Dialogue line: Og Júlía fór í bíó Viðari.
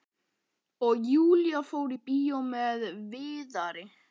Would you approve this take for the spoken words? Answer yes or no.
no